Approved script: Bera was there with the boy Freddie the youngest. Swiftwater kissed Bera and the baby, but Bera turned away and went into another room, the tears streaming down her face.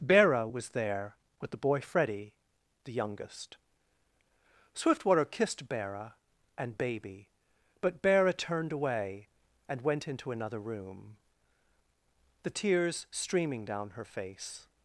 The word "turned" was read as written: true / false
true